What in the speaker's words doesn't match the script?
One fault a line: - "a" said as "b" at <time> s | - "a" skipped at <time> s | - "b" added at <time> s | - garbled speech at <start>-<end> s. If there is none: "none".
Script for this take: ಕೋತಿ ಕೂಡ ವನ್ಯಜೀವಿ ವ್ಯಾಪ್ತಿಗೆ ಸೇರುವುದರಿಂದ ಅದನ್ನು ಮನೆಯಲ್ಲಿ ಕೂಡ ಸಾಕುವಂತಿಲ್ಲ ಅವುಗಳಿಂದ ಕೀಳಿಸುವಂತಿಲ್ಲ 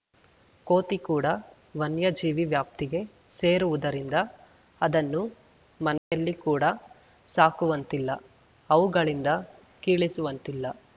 none